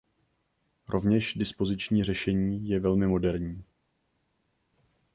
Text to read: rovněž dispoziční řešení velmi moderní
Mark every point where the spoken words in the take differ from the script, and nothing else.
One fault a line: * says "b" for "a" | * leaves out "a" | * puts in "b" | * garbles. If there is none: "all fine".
* puts in "je"